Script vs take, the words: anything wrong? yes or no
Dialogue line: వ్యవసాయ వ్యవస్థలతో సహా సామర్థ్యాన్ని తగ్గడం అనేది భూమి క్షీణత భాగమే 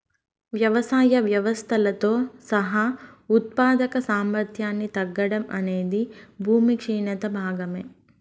yes